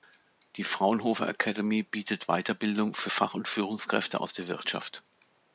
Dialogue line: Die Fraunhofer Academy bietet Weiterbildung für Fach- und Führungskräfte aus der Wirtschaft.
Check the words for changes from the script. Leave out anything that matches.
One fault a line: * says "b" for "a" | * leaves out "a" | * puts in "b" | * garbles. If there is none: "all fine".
all fine